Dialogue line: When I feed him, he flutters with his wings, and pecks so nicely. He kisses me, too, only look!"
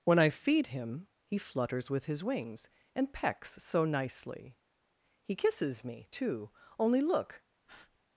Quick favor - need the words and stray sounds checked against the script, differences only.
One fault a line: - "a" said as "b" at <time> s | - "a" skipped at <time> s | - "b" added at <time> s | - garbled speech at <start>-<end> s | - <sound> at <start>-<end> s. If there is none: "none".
- breath at 7.7-8.0 s